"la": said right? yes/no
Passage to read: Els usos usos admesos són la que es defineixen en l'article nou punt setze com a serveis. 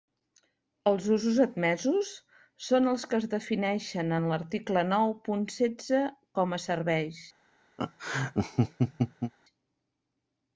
no